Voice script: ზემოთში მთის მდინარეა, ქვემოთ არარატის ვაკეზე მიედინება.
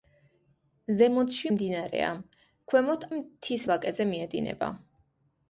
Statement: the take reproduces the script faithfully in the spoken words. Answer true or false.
false